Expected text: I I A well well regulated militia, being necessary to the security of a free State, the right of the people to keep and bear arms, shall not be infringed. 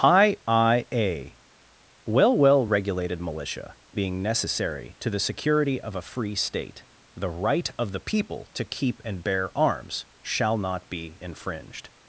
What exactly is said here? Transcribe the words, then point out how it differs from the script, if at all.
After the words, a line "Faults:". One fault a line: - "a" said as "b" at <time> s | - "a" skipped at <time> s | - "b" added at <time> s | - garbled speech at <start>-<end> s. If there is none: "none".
I I A well well regulated militia, being necessary to the security of a free State, the right of the people to keep and bear arms, shall not be infringed.
Faults:
none